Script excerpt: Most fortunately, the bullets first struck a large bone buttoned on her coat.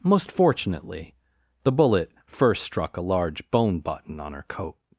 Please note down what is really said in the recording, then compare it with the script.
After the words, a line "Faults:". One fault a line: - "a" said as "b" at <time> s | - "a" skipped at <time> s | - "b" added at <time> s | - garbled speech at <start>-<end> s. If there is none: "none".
Most fortunately, the bullet first struck a large bone button on her coat.
Faults:
- "bullets" said as "bullet" at 1.7 s
- "buttoned" said as "button" at 3.8 s